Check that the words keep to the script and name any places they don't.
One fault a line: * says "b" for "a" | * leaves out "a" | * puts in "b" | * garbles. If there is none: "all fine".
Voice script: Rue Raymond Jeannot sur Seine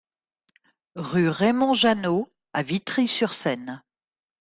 * puts in "à Vitry"